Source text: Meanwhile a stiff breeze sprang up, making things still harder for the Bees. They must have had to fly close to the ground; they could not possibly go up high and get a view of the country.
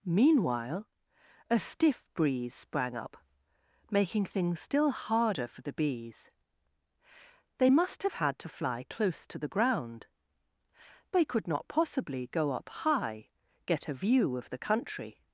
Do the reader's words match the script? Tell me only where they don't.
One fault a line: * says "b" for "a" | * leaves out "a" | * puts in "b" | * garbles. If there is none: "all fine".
* leaves out "and"